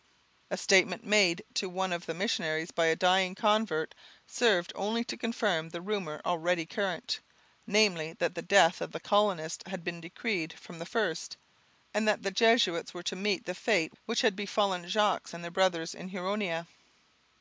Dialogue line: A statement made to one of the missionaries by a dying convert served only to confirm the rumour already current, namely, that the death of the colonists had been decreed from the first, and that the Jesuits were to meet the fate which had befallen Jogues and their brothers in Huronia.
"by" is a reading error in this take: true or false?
false